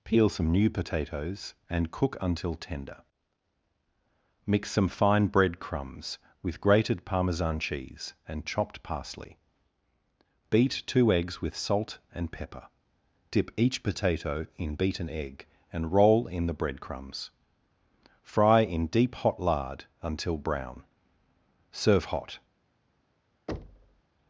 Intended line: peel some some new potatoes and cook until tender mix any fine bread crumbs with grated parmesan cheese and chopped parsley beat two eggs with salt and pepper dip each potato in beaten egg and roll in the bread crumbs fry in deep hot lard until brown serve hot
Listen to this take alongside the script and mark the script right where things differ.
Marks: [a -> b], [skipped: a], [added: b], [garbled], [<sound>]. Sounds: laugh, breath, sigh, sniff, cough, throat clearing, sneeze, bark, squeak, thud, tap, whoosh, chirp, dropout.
peel some [skipped: some] new potatoes and cook until tender mix [any -> some] fine bread crumbs with grated parmesan cheese and chopped parsley beat two eggs with salt and pepper dip each potato in beaten egg and roll in the bread crumbs fry in deep hot lard until brown serve hot [thud]